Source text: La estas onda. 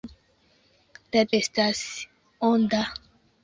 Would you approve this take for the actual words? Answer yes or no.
yes